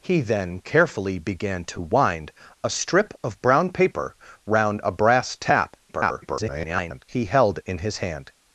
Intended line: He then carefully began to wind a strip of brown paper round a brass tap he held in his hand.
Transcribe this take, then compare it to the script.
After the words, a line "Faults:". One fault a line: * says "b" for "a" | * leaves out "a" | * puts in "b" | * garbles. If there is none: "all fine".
He then carefully began to wind a strip of brown paper round a brass tap [garbled] he held in his hand.
Faults:
* garbles